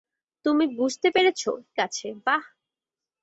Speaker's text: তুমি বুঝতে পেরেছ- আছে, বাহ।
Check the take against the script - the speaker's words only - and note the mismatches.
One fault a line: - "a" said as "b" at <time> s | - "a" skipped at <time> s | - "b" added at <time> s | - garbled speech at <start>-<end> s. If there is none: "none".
none